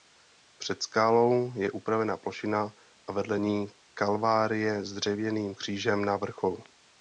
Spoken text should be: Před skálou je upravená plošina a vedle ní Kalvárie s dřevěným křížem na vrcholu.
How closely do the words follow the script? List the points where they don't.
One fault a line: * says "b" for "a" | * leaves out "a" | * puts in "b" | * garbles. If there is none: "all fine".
all fine